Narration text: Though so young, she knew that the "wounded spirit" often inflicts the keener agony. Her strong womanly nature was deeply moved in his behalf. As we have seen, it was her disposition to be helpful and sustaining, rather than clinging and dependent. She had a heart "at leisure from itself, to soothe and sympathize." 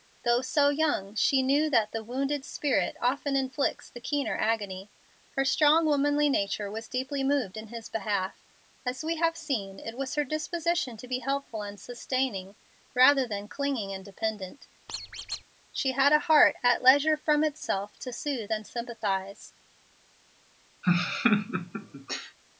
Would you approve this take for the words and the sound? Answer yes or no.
no